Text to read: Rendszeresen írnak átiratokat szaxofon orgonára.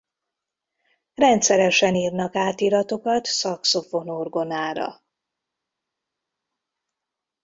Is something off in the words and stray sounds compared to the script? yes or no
no